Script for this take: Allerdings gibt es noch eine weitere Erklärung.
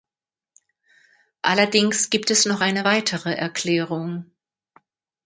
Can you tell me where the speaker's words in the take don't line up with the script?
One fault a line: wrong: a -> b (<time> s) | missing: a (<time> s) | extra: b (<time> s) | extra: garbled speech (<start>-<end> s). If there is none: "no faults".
no faults